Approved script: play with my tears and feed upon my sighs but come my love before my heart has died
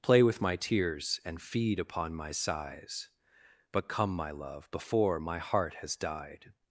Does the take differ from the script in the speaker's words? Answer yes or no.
no